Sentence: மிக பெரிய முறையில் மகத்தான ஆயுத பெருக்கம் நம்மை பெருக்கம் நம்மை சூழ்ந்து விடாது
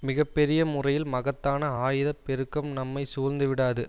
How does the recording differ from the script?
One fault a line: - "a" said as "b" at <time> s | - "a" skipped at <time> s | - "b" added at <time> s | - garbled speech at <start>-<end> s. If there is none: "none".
- "பெருக்கம் நம்மை" skipped at 3.0 s